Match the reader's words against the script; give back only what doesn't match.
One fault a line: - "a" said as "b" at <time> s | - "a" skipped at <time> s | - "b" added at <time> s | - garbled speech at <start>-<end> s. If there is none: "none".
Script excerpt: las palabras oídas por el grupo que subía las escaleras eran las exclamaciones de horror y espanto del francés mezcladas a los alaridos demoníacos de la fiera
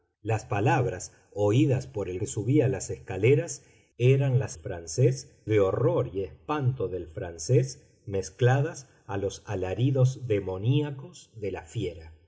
- "grupo" skipped at 2.2 s
- "exclamaciones" said as "francés" at 4.6 s